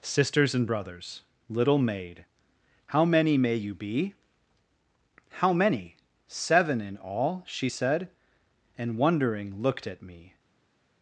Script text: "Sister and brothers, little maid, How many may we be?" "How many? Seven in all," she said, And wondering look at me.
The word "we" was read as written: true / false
false